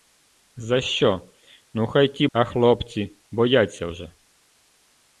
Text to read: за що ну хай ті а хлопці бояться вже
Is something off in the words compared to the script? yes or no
no